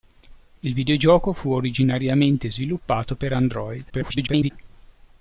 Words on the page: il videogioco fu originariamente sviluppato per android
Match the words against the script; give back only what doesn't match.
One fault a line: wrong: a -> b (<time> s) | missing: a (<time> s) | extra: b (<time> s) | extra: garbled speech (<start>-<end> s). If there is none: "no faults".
extra: garbled speech (3.9-4.5 s)